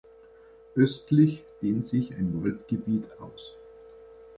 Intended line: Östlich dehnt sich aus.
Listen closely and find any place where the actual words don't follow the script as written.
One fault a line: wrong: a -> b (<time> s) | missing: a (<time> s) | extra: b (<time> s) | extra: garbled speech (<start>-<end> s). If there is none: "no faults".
extra: ein Waldgebiet (2.1 s)